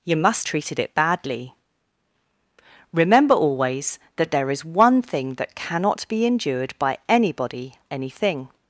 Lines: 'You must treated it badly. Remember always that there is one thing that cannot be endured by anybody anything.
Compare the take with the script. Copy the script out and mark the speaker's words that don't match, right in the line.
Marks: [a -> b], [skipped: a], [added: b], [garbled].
'You must treated it badly. Remember always that there is one thing that cannot be endured by anybody anything.